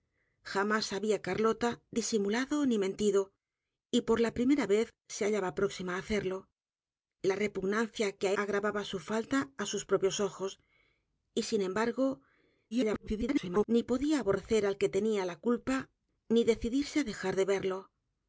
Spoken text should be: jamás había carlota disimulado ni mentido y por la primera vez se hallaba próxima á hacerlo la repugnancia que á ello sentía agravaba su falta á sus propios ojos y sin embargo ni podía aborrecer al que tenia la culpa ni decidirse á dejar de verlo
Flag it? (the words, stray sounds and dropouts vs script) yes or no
yes